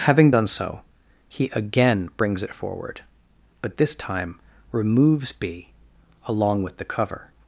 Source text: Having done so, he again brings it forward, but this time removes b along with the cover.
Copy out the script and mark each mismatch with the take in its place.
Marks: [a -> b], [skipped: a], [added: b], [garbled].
Having done so, he again brings it forward, but this time removes b along with the cover.